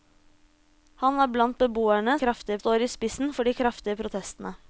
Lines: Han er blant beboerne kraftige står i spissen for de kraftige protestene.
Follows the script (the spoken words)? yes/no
yes